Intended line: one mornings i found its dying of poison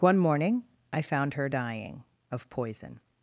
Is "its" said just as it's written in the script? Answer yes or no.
no